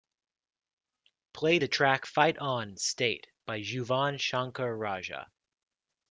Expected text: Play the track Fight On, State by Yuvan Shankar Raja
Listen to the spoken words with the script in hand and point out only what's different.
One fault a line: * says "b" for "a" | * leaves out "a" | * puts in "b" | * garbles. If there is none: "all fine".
all fine